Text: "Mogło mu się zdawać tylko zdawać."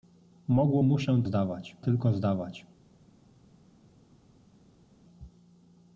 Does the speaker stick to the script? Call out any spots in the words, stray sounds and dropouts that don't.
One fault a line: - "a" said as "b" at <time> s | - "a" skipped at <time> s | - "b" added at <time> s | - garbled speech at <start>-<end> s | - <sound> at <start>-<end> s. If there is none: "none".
none